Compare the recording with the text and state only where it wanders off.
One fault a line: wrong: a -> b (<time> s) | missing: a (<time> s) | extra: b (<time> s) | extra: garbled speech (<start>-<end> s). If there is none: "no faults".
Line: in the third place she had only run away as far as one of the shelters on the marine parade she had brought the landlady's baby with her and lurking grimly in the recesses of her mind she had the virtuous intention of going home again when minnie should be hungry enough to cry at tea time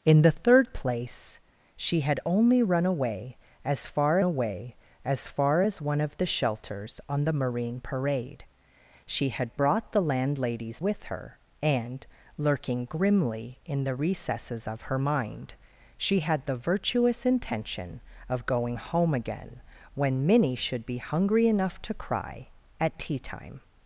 extra: away (4.2 s)
extra: far as (5.3 s)
missing: baby (10.8 s)